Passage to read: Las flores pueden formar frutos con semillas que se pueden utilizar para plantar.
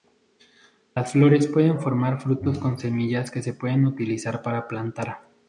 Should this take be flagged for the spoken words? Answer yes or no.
no